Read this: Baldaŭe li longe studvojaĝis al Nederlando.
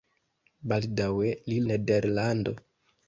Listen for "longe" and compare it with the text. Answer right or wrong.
wrong